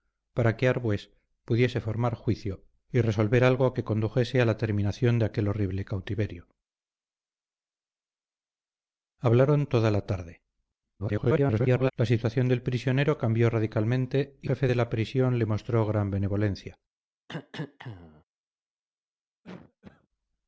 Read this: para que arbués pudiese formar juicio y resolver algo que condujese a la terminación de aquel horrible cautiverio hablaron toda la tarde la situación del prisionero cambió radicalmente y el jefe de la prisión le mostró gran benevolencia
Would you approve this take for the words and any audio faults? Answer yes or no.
no